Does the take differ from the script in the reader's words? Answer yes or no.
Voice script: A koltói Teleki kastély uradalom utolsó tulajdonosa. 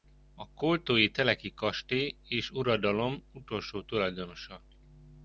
yes